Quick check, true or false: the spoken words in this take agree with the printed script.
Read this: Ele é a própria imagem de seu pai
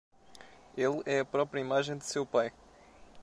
true